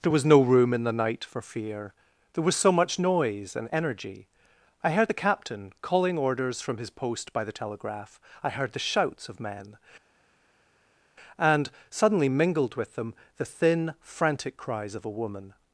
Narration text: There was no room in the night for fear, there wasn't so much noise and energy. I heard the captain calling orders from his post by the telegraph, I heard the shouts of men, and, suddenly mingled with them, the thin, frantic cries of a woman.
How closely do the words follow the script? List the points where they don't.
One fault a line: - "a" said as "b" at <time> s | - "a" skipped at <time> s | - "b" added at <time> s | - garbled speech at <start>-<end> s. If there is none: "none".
- "wasn't" said as "was" at 2.4 s